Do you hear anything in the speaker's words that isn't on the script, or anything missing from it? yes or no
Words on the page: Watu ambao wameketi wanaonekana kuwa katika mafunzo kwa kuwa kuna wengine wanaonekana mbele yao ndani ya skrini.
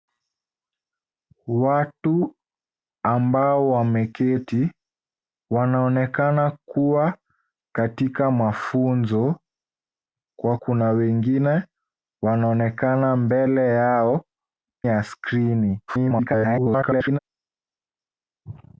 yes